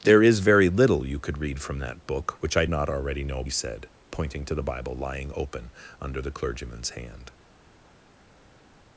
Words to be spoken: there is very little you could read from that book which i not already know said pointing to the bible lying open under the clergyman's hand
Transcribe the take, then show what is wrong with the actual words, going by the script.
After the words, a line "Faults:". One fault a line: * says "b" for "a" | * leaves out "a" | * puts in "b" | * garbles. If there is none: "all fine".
there is very little you could read from that book which i not already know said pointing to the bible lying open under the clergyman's hand
Faults:
all fine